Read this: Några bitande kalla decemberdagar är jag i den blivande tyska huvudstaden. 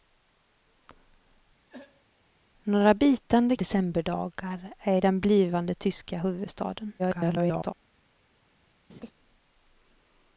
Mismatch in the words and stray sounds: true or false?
true